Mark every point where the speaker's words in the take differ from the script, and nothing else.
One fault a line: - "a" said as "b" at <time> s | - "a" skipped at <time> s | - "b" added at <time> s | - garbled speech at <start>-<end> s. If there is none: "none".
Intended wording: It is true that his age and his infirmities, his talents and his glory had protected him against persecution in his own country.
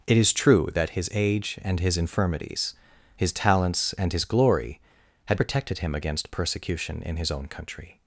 none